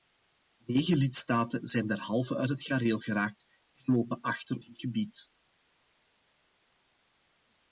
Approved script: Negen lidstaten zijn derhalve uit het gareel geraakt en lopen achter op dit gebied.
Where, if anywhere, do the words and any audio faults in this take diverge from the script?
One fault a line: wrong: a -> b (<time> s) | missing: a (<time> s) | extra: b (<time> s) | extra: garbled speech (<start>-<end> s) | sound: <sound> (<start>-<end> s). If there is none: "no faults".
missing: op (4.6 s)